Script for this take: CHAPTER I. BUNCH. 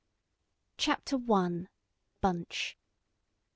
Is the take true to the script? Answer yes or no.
yes